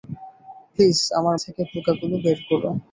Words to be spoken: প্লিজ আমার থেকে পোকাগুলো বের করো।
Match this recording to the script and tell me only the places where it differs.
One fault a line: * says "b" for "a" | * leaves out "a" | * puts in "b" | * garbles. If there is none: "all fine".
all fine